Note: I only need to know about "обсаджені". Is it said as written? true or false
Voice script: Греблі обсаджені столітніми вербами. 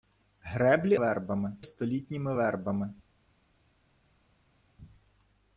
false